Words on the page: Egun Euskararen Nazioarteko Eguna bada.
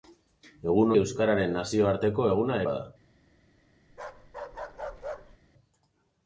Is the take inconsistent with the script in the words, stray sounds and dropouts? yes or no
yes